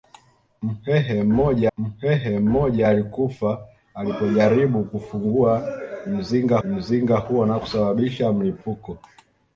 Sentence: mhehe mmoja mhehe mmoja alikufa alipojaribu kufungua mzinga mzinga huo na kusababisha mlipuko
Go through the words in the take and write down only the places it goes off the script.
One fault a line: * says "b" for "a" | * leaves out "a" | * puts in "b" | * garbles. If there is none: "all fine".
all fine